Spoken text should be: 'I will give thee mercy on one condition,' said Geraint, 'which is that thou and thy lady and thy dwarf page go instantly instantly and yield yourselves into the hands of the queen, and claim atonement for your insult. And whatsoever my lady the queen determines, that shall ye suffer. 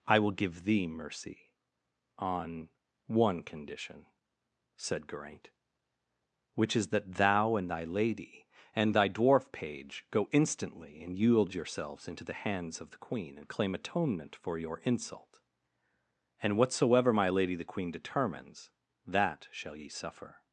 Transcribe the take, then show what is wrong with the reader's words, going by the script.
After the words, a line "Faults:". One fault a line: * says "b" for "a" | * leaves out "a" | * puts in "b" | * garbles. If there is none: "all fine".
'I will give thee mercy on one condition,' said Geraint, 'which is that thou and thy lady and thy dwarf page go instantly and yield yourselves into the hands of the queen, and claim atonement for your insult. And whatsoever my lady the queen determines, that shall ye suffer.
Faults:
* leaves out "instantly"